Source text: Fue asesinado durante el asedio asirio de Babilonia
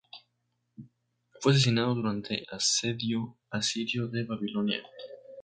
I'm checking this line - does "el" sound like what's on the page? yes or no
no